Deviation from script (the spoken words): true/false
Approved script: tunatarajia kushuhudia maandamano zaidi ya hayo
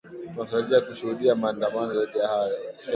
false